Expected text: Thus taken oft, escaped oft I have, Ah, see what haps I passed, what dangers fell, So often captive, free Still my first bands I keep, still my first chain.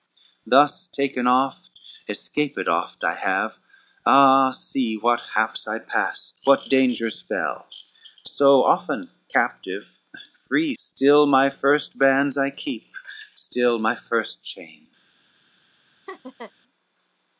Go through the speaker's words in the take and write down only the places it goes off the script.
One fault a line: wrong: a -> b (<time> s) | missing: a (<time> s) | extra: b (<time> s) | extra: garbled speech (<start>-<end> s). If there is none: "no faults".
no faults